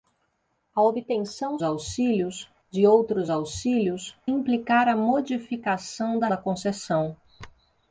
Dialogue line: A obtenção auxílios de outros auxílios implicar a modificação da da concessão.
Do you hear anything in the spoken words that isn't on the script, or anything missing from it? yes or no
no